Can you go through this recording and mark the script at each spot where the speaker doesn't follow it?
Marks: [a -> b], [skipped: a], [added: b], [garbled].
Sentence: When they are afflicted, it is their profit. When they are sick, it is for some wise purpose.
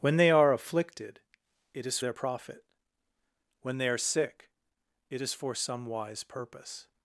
When they are afflicted, it is their profit. When they are sick, it is for some wise purpose.